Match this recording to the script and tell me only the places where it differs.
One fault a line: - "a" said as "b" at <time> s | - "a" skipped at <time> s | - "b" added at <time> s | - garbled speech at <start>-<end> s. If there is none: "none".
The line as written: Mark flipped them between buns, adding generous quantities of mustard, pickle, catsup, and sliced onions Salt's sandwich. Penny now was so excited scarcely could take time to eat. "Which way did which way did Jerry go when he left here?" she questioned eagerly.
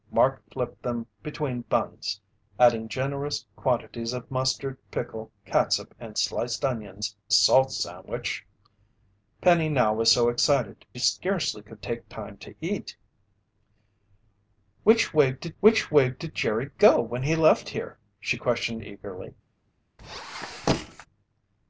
none